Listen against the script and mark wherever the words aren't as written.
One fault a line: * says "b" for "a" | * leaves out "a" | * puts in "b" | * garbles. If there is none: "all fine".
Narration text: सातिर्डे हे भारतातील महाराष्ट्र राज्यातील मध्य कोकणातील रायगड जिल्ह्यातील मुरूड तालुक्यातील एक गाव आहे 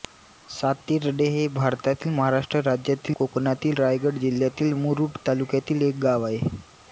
* leaves out "मध्य"